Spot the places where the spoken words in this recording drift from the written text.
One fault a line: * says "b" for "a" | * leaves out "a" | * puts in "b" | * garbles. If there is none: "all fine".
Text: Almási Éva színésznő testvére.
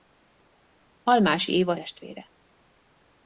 * leaves out "színésznő"